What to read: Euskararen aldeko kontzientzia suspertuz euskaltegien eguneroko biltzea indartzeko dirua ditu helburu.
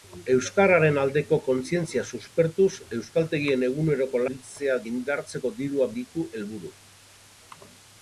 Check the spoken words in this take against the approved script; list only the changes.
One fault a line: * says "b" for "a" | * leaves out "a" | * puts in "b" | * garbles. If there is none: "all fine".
all fine